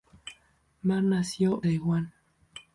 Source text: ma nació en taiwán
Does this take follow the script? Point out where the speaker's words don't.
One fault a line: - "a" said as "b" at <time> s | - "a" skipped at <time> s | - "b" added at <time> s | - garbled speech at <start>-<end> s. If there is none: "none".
- "en" skipped at 1.6 s